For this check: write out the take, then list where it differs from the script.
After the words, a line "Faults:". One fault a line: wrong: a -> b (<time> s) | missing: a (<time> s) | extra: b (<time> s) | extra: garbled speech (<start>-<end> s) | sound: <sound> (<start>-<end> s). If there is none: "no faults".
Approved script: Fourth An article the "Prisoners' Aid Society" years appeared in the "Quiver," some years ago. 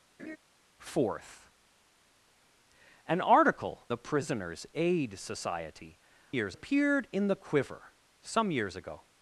Fourth An article the "Prisoners' Aid Society" years appeared in the "Quiver," some years ago.
Faults:
sound: laugh (0.2-0.4 s)